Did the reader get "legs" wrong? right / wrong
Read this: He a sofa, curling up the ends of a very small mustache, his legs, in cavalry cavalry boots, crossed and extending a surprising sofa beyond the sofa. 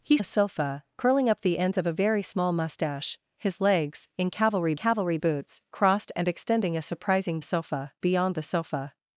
right